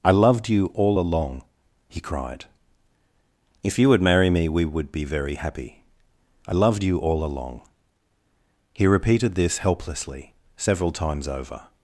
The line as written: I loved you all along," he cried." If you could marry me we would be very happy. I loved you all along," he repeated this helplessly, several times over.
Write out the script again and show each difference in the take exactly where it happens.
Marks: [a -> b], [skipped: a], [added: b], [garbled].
I loved you all along," he cried." If you [could -> would] marry me we would be very happy. I loved you all along," he repeated this helplessly, several times over.